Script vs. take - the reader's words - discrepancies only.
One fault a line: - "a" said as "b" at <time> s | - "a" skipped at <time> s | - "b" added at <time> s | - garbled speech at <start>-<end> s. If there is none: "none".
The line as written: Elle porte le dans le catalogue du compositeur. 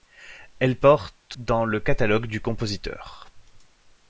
- "le" skipped at 1.4 s